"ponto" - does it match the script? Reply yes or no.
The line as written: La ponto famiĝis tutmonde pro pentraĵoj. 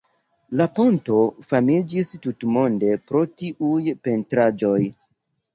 yes